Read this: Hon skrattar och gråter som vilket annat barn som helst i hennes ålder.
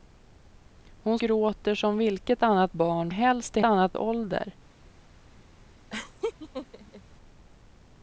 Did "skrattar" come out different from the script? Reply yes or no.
yes